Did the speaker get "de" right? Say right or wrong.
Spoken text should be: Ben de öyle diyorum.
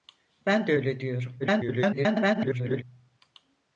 right